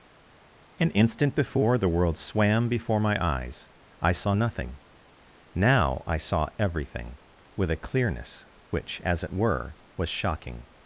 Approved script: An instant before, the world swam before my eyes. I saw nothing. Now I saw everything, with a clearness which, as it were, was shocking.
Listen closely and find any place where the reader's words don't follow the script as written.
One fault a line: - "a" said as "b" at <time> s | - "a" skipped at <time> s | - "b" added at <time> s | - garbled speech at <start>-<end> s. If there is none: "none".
none